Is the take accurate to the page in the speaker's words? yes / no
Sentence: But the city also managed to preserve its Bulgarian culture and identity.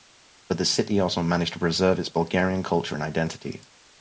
yes